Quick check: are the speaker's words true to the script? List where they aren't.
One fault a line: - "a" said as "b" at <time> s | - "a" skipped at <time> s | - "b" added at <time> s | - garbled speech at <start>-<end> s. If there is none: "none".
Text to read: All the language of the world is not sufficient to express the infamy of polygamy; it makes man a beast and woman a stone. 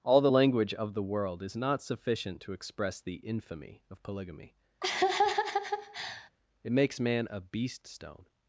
- "and woman a" skipped at 7.9 s